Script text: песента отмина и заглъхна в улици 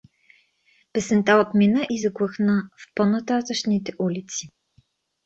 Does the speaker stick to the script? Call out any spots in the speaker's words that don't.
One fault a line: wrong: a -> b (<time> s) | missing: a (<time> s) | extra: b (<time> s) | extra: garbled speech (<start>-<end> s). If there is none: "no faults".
extra: по нататъшните (2.9 s)